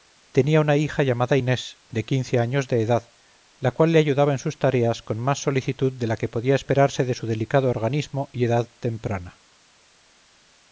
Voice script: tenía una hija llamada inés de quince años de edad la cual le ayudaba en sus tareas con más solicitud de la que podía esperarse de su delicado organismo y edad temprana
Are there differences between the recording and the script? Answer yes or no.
no